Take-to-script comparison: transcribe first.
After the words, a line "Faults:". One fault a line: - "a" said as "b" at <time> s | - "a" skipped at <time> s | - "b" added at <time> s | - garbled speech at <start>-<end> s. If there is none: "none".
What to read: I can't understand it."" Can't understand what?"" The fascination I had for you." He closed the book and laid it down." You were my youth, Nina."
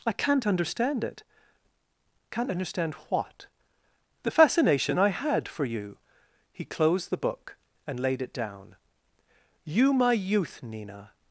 I can't understand it."" Can't understand what?"" The fascination I had for you." He closed the book and laid it down." You my youth, Nina."
Faults:
- "were" skipped at 9.9 s